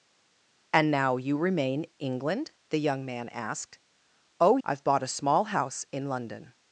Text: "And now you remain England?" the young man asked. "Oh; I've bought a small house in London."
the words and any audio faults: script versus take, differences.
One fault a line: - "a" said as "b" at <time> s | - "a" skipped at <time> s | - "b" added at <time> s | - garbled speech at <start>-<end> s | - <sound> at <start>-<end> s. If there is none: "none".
none